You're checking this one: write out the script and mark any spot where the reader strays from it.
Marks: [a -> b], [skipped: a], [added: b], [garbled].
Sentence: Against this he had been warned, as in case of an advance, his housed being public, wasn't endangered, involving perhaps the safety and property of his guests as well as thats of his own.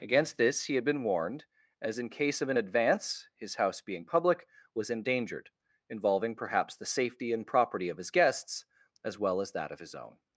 Against this he had been warned, as in case of an advance, his [housed -> house] being public, [wasn't -> was] endangered, involving perhaps the safety and property of his guests as well as [thats -> that] of his own.